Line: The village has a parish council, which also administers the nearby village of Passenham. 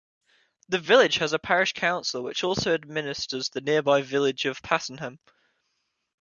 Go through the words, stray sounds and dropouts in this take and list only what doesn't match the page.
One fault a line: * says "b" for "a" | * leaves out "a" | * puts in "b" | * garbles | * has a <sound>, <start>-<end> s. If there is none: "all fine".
all fine